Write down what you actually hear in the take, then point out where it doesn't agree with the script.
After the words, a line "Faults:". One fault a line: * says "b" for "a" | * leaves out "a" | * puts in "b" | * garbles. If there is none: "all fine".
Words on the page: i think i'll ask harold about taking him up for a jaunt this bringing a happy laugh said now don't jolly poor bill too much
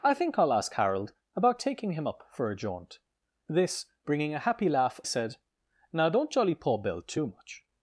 i think i'll ask harold about taking him up for a jaunt this bringing a happy laugh said now don't jolly poor bill too much
Faults:
all fine